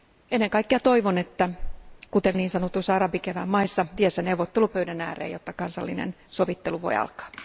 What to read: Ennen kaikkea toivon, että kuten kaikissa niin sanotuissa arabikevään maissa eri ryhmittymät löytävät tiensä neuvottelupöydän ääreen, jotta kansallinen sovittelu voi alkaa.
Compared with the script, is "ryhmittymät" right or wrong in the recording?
wrong